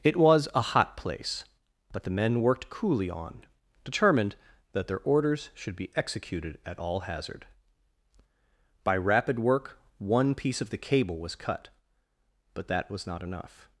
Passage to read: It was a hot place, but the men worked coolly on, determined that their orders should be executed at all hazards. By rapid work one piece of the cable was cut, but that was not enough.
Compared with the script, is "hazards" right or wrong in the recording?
wrong